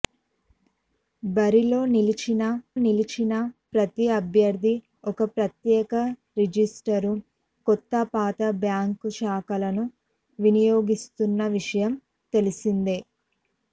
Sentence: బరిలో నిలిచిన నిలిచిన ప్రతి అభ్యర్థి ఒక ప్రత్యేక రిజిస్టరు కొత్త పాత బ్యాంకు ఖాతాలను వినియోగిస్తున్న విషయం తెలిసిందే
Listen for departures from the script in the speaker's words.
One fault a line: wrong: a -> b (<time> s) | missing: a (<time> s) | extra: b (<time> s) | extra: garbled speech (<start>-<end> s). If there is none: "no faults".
no faults